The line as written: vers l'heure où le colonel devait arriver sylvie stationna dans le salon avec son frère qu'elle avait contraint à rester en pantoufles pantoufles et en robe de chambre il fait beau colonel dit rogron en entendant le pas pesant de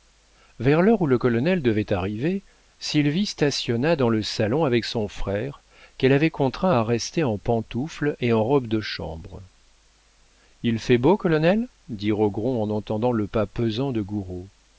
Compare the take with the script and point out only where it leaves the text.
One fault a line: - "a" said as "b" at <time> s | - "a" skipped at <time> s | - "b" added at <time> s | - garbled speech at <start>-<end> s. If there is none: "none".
- "pantoufles" skipped at 8.1 s